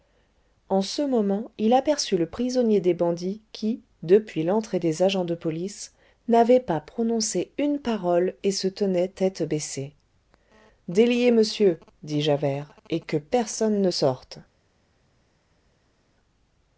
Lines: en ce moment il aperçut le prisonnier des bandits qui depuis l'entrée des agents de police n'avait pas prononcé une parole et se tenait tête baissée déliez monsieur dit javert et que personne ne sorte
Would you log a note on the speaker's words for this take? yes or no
no